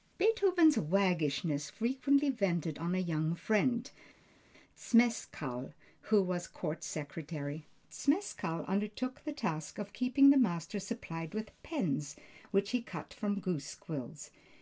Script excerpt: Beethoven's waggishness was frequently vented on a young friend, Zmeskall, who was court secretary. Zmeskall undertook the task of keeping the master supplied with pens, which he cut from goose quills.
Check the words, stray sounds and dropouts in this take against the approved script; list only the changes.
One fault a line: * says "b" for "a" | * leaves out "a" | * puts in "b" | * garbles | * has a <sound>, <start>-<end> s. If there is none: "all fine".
* leaves out "was"